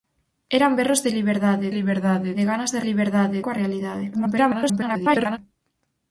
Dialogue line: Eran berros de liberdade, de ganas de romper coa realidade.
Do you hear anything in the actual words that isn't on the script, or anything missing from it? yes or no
yes